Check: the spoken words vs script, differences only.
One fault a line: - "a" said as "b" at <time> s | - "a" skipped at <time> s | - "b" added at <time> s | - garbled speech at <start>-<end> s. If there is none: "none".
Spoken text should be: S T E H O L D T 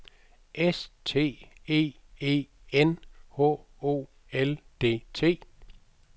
- "E N" added at 2.2 s